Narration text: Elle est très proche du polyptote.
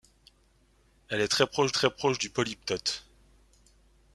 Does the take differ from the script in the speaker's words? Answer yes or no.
yes